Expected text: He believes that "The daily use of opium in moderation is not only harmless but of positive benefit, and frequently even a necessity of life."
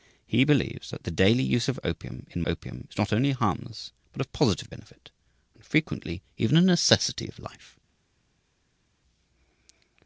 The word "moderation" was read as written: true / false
false